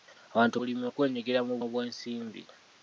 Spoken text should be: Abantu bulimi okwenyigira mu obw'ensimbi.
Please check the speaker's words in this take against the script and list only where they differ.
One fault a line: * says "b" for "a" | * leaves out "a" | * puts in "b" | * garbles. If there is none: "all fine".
all fine